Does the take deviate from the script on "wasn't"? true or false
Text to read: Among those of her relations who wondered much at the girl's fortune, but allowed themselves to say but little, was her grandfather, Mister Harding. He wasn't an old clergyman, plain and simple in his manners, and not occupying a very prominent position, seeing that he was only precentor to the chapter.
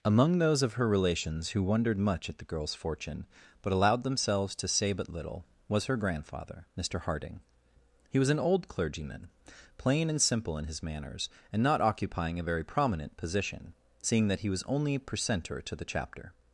true